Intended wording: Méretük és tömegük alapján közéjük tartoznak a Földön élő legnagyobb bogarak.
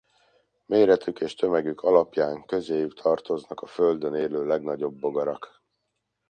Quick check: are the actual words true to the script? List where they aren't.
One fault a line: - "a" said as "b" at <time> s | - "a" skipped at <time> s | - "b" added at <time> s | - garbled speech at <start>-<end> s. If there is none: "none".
none